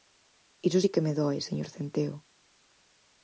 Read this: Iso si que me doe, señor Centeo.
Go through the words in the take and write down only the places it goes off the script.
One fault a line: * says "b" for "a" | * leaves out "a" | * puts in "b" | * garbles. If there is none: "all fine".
all fine